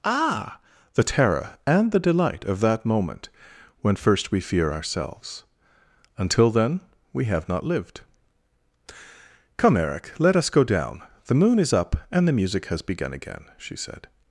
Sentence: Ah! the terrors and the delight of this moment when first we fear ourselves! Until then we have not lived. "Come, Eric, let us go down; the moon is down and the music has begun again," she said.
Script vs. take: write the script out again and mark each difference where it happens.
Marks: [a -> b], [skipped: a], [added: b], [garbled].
Ah! the [terrors -> terror] and the delight of [this -> that] moment when first we fear ourselves! Until then we have not lived. "Come, Eric, let us go down; the moon is [down -> up] and the music has begun again," she said.